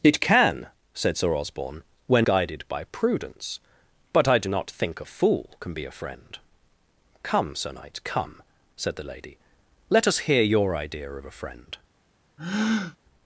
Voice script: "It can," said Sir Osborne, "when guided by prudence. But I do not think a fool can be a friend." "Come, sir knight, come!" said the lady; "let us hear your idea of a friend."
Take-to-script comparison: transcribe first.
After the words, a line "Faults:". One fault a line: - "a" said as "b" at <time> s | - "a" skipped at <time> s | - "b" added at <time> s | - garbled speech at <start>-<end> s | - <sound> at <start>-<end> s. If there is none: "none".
"It can," said Sir Osborne, "when guided by prudence. But I do not think a fool can be a friend." "Come, sir knight, come!" said the lady; "let us hear your idea of a friend."
Faults:
- breath at 12.4-13.0 s